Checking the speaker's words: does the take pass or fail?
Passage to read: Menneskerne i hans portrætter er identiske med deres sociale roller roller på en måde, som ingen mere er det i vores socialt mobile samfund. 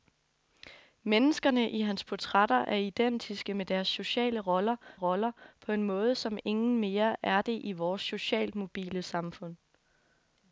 pass